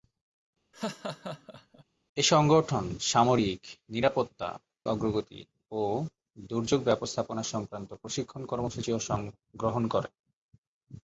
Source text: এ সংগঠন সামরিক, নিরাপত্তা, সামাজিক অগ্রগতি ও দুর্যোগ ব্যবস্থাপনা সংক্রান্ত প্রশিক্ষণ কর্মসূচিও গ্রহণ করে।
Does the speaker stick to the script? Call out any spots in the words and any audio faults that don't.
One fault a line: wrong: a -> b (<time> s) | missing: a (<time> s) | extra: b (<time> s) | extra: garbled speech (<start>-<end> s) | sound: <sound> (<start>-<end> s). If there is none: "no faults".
sound: laugh (0.7-1.8 s)
missing: সামাজিক (4.5 s)